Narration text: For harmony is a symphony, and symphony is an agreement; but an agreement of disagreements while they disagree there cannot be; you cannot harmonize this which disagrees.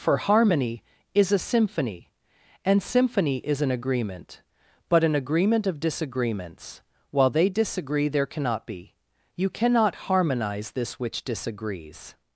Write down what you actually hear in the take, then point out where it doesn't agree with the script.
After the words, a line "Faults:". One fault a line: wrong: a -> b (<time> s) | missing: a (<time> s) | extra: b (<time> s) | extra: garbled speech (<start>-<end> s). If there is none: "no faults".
For harmony is a symphony, and symphony is an agreement; but an agreement of disagreements while they disagree there cannot be; you cannot harmonize this which disagrees.
Faults:
no faults